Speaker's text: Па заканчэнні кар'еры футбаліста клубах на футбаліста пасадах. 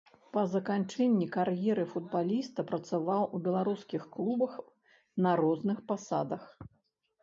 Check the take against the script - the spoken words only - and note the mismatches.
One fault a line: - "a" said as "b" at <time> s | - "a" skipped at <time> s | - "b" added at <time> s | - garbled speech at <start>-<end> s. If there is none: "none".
- "працаваў у беларускіх" added at 2.7 s
- "футбаліста" said as "розных" at 5.5 s